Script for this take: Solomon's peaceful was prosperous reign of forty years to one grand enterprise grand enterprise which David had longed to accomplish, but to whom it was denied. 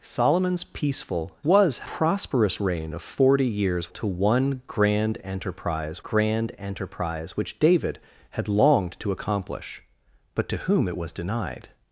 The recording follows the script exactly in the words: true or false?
true